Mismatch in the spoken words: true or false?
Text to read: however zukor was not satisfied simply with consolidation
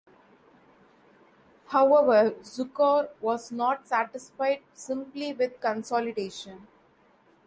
false